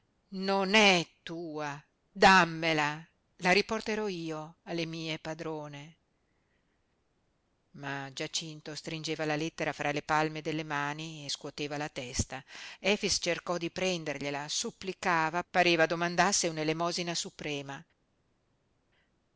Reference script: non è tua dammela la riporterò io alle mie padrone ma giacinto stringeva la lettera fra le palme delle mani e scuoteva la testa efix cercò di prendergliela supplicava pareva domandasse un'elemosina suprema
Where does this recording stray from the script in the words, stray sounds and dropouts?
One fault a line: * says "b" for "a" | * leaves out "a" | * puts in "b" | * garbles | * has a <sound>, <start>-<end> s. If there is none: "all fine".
all fine